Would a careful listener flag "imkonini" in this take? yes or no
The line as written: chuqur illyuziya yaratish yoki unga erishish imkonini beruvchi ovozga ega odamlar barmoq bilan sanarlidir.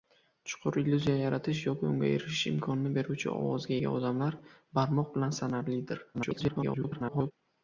no